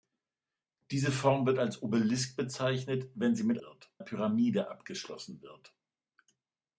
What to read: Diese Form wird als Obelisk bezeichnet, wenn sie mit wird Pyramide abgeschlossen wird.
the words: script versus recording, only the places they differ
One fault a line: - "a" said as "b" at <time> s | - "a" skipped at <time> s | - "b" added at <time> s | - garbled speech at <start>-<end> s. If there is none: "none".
none